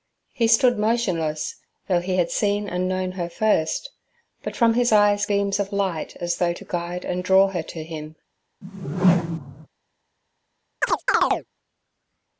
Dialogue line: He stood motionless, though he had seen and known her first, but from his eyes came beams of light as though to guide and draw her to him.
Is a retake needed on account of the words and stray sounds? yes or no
yes